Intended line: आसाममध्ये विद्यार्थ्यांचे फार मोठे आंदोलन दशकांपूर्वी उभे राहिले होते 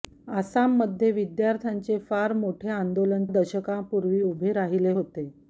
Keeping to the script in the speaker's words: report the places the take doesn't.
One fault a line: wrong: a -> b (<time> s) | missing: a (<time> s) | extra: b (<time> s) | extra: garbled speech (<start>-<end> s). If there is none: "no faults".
no faults